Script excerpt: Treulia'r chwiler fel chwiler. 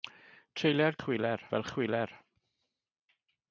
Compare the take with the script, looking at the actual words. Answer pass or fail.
pass